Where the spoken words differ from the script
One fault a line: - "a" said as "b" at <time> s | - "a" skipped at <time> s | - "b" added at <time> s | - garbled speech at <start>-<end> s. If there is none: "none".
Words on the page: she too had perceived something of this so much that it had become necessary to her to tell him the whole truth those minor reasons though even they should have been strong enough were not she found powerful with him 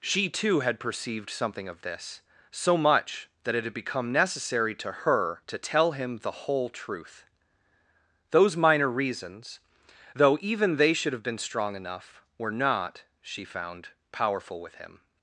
none